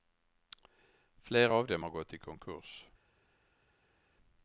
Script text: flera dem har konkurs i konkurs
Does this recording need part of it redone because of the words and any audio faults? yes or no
yes